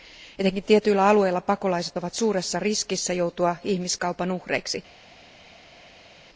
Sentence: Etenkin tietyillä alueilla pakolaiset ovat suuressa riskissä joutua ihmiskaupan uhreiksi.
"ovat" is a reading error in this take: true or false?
false